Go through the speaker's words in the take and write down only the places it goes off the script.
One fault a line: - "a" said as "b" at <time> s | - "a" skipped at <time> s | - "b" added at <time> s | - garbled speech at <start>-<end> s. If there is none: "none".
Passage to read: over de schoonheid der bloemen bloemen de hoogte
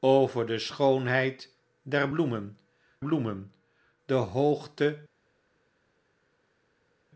none